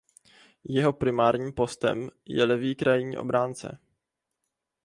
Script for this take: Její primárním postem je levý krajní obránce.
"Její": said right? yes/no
no